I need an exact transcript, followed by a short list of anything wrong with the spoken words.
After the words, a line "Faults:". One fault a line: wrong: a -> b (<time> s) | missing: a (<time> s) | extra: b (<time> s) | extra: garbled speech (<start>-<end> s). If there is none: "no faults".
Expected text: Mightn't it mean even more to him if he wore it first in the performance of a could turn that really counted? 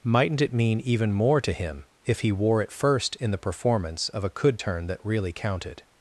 Mightn't it mean even more to him if he wore it first in the performance of a could turn that really counted?
Faults:
no faults